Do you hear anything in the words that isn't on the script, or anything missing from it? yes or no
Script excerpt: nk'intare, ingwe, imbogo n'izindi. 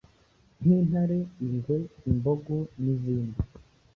no